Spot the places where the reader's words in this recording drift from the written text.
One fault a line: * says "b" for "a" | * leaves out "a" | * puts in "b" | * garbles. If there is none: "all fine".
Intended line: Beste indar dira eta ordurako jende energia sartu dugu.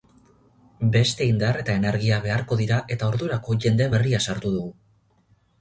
* puts in "eta energia beharko"
* says "berria" for "energia"